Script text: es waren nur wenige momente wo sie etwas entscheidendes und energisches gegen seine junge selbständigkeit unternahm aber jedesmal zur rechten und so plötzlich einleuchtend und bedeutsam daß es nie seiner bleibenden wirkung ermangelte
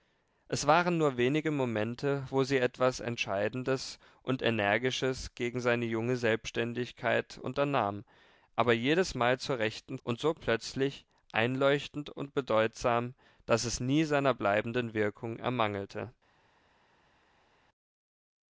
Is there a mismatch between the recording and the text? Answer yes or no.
no